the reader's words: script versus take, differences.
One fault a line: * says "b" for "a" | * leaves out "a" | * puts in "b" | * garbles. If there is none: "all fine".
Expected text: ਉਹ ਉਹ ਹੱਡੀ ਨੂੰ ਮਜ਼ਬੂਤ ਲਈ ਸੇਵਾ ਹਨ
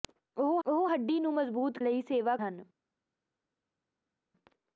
all fine